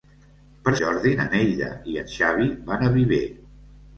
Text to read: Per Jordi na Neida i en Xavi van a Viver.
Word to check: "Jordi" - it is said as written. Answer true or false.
true